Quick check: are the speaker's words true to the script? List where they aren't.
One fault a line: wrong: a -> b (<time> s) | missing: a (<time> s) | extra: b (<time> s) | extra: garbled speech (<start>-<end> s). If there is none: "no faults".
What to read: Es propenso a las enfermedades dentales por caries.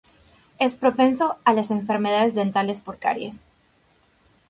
no faults